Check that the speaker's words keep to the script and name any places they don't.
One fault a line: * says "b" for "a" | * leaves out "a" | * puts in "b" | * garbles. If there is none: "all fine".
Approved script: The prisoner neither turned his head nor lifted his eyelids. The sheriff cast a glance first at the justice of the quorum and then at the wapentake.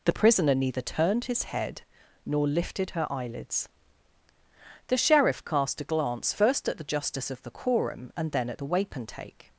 * says "her" for "his"